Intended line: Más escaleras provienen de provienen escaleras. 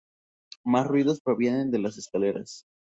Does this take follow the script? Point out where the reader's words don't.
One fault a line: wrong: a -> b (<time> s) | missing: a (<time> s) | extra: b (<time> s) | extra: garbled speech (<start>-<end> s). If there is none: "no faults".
wrong: escaleras -> ruidos (0.9 s)
wrong: provienen -> las (1.8 s)